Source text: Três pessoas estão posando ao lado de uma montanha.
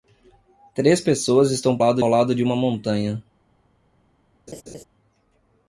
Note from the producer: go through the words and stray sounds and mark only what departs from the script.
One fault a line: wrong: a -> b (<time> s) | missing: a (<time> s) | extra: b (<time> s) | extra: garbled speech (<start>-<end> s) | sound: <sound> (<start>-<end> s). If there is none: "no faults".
wrong: posando -> lado (1.8 s)
sound: laugh (4.5-4.8 s)